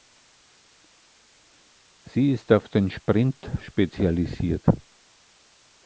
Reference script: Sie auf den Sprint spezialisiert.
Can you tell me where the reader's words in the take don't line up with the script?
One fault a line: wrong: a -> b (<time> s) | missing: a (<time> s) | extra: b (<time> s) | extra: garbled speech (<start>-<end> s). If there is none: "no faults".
extra: ist (2.3 s)